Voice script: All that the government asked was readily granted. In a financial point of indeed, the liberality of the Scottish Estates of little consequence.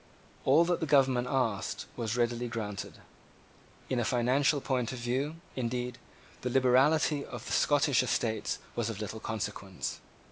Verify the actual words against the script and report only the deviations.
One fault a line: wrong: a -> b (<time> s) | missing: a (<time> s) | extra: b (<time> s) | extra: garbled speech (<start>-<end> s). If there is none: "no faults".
extra: view (5.0 s)
extra: was (8.7 s)